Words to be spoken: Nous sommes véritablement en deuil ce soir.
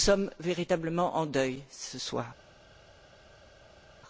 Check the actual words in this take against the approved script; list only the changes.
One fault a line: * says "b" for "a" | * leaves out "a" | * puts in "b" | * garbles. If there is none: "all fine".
all fine